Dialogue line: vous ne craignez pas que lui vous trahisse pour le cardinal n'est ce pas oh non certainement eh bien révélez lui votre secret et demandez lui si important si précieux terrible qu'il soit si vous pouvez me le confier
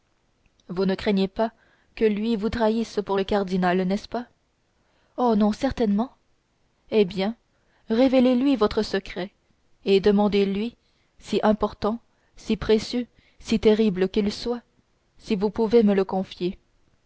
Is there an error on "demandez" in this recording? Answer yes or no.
no